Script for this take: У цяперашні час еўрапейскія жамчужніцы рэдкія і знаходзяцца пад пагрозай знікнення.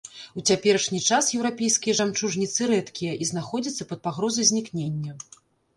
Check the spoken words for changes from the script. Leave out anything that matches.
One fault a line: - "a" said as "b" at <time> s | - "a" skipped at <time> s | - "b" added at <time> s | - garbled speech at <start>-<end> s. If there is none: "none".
none